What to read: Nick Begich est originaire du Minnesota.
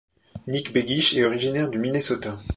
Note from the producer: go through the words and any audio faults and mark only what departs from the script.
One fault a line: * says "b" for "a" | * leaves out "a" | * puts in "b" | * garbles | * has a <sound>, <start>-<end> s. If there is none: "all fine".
all fine